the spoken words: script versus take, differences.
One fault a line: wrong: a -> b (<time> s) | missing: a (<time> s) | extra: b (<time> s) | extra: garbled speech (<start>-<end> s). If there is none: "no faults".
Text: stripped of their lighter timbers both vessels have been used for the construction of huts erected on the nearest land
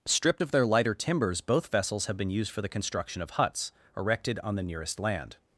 no faults